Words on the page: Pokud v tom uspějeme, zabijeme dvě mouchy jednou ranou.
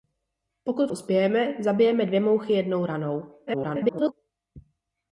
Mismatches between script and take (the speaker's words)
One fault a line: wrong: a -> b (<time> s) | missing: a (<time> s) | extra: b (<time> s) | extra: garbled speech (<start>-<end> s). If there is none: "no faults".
missing: tom (0.9 s)
extra: garbled speech (3.5-4.1 s)